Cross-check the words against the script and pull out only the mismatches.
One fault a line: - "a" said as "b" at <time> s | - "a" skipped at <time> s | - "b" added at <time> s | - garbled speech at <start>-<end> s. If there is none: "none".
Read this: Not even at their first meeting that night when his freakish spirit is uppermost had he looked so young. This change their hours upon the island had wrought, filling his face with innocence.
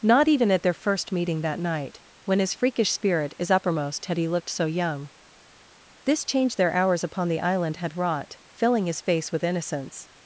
none